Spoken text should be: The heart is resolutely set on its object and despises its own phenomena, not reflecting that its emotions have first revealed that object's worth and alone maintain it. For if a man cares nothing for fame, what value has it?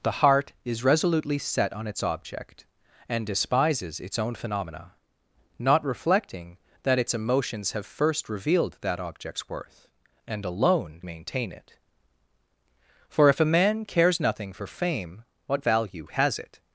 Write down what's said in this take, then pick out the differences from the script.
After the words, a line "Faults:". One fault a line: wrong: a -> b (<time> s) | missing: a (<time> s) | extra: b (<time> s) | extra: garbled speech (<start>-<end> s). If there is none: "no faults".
The heart is resolutely set on its object and despises its own phenomena, not reflecting that its emotions have first revealed that object's worth and alone maintain it. For if a man cares nothing for fame, what value has it?
Faults:
no faults